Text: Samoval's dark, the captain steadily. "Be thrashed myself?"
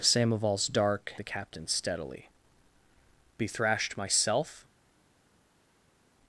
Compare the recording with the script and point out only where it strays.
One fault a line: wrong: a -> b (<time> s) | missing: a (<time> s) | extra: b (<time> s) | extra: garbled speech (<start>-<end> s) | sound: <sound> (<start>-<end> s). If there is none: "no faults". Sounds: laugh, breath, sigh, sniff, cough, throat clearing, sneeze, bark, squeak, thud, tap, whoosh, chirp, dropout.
no faults